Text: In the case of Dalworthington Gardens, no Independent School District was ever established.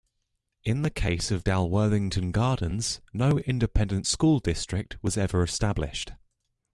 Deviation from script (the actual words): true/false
false